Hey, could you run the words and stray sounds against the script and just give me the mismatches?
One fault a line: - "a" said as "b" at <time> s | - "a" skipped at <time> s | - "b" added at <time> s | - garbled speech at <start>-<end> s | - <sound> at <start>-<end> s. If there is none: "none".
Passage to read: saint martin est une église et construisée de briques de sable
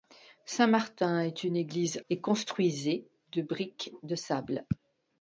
none